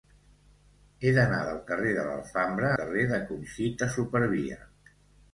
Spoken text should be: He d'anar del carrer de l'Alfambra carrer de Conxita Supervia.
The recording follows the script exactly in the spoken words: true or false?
true